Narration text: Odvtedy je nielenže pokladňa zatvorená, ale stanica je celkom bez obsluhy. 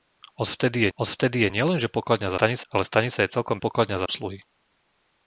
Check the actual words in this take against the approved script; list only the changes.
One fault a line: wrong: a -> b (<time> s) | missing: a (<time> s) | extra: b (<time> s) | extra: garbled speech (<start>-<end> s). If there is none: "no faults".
extra: odvtedy (0.9 s)
wrong: zatvorená -> stanica (2.3 s)
wrong: bez -> pokladňa (3.6 s)